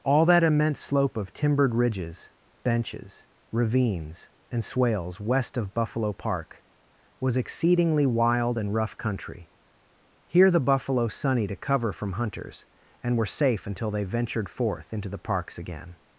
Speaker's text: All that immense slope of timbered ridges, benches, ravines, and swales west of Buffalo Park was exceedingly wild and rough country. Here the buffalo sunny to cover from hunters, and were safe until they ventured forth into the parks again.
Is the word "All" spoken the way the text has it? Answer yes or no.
yes